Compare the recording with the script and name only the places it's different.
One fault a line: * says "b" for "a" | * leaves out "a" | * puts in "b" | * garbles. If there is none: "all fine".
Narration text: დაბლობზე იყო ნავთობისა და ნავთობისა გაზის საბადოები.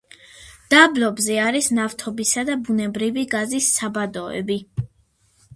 * says "არის" for "იყო"
* says "ბუნებრივი" for "ნავთობისა"